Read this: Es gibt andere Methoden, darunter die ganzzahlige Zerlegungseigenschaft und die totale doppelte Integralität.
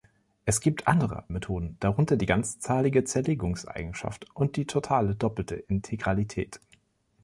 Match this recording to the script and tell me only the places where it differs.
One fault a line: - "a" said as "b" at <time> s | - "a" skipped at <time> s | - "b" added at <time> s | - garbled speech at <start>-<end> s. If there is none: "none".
none